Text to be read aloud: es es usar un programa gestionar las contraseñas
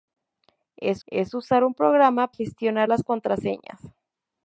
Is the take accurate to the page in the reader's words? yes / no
yes